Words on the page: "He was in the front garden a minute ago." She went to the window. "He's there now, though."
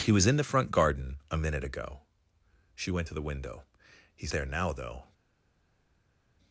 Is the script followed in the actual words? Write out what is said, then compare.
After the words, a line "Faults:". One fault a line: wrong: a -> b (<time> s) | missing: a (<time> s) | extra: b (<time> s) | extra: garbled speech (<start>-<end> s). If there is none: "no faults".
"He was in the front garden a minute ago." She went to the window. "He's there now, though."
Faults:
no faults